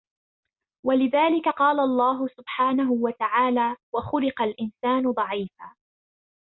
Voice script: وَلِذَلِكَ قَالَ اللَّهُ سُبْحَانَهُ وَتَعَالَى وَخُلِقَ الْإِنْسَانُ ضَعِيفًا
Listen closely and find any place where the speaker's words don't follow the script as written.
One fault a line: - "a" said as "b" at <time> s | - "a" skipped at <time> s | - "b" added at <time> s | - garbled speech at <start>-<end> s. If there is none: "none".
none